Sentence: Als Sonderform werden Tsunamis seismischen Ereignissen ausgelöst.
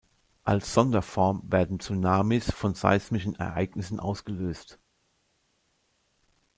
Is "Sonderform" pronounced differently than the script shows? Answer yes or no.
no